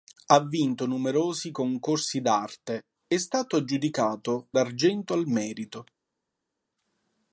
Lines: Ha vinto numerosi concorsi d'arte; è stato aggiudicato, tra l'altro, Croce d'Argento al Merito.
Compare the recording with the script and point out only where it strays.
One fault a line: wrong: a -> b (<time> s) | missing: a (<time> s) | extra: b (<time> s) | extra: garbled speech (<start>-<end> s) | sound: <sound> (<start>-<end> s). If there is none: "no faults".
missing: tra l'altro Croce (4.5 s)